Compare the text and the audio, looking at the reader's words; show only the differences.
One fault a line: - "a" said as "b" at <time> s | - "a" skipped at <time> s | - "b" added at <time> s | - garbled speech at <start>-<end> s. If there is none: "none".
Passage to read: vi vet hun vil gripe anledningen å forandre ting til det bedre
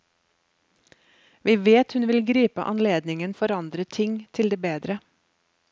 none